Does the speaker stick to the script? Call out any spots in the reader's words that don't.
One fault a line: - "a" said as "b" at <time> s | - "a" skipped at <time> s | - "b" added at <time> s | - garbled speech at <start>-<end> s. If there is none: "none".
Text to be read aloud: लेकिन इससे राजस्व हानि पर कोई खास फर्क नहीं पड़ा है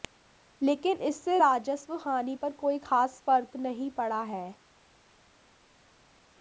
none